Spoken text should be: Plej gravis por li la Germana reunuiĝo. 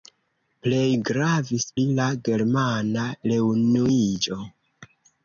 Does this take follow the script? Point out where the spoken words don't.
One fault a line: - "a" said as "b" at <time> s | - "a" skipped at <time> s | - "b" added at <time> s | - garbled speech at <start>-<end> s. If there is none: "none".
- "por" skipped at 1.7 s